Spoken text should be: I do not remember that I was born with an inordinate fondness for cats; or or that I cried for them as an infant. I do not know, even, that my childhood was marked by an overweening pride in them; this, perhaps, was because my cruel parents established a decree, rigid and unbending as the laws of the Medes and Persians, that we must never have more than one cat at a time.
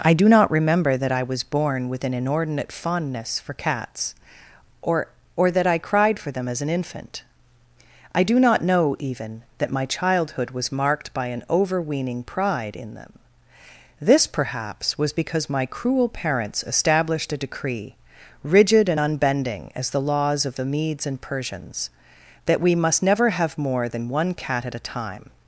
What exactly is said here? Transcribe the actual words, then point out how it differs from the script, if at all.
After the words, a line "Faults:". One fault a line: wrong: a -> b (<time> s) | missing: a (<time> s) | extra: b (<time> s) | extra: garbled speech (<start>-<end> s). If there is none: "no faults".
I do not remember that I was born with an inordinate fondness for cats; or or that I cried for them as an infant. I do not know, even, that my childhood was marked by an overweening pride in them; this, perhaps, was because my cruel parents established a decree, rigid and unbending as the laws of the Medes and Persians, that we must never have more than one cat at a time.
Faults:
no faults